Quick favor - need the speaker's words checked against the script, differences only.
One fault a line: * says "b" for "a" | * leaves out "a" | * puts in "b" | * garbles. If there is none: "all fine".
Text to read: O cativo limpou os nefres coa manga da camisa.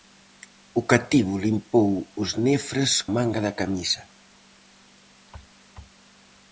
* leaves out "coa"